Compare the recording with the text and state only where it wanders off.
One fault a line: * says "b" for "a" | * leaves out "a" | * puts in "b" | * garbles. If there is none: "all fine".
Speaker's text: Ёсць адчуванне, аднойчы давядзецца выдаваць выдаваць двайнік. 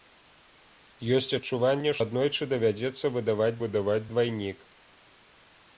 all fine